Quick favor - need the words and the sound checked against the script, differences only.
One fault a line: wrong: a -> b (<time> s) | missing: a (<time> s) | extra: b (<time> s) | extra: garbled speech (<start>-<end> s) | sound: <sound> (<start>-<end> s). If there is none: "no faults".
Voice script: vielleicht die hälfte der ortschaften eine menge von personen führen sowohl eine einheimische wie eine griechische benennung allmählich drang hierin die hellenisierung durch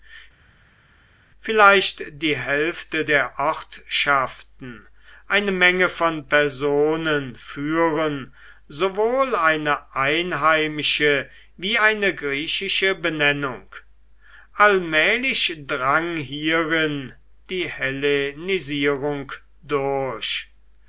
no faults